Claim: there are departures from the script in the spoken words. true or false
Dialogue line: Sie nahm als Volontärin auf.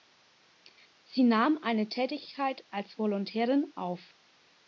true